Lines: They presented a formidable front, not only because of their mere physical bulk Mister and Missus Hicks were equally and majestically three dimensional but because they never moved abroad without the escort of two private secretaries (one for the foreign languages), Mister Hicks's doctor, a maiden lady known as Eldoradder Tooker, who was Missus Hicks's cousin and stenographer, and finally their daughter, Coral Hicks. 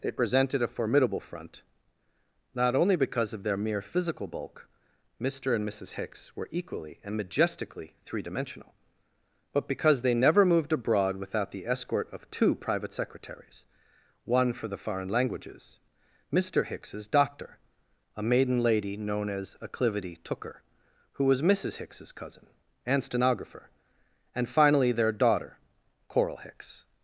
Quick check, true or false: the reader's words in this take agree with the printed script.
false